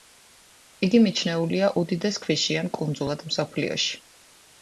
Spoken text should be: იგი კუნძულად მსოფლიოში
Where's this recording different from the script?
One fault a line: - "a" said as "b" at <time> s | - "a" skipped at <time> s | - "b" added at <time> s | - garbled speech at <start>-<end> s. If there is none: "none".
- "მიჩნეულია უდიდეს ქვიშიან" added at 1.0 s